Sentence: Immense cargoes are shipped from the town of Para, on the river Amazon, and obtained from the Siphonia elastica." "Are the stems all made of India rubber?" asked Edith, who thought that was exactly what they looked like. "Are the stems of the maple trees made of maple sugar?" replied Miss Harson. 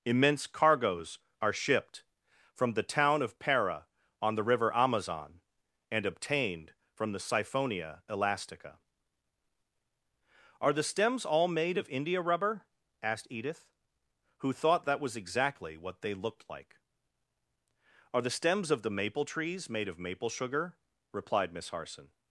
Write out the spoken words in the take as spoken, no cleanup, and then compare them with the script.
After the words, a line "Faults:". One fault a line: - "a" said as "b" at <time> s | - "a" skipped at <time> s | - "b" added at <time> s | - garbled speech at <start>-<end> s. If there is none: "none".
Immense cargoes are shipped from the town of Para, on the river Amazon, and obtained from the Siphonia elastica." "Are the stems all made of India rubber?" asked Edith, who thought that was exactly what they looked like. "Are the stems of the maple trees made of maple sugar?" replied Miss Harson.
Faults:
none